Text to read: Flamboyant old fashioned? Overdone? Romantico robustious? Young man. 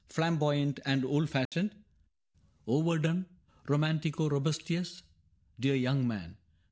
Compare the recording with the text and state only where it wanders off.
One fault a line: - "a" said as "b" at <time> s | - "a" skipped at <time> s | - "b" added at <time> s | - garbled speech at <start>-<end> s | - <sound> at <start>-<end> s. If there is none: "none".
- "and" added at 0.8 s
- dropout at 1.5-1.5 s
- "Dear" added at 5.6 s